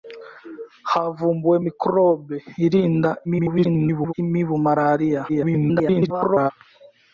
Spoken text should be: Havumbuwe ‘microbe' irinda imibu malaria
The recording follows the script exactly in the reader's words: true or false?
false